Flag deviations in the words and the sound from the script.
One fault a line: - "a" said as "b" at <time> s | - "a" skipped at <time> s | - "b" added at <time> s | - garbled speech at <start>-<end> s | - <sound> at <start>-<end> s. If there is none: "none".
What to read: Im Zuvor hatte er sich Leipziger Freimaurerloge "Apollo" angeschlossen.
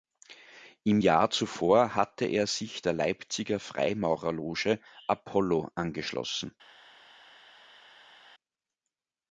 - "Jahr" added at 0.9 s
- "der" added at 2.8 s